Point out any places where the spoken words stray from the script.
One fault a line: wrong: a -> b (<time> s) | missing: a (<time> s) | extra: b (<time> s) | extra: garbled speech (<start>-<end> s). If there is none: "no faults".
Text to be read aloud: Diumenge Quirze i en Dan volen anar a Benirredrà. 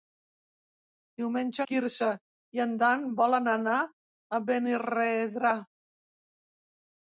no faults